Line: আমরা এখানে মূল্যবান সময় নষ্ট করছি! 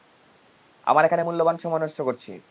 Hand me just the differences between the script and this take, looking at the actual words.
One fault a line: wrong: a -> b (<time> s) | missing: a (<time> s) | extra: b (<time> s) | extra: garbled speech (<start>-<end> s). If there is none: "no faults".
no faults